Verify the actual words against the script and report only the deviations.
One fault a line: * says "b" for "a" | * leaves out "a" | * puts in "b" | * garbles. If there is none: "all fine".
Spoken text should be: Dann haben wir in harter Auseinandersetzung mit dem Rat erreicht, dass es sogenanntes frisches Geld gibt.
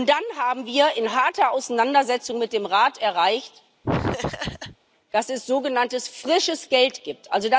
all fine